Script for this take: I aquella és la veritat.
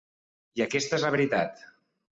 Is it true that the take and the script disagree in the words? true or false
true